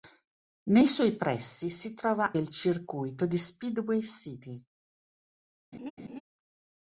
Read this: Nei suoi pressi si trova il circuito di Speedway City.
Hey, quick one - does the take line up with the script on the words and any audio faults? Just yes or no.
no